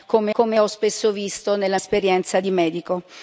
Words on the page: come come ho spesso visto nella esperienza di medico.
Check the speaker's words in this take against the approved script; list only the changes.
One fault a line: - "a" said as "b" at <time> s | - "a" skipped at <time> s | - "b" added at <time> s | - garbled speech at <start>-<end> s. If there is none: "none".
none